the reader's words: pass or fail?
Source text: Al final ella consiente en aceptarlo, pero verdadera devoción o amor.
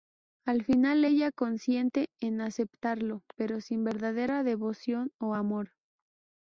fail